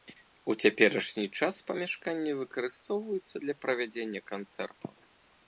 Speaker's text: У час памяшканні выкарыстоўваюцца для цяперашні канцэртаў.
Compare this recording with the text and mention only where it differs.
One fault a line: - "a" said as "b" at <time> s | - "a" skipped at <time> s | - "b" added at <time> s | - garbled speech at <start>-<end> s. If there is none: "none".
- "цяперашні" added at 0.6 s
- "цяперашні" said as "правядзення" at 3.7 s